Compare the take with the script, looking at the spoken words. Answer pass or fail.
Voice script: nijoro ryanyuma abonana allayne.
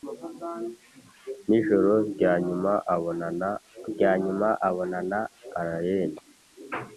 fail